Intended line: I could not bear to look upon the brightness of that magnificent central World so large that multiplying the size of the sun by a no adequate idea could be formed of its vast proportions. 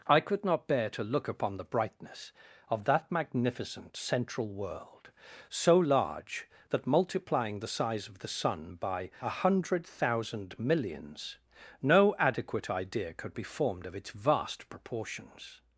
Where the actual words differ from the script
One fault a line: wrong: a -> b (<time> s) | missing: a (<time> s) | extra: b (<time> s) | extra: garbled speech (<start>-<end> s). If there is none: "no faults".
extra: hundred thousand millions (9.3 s)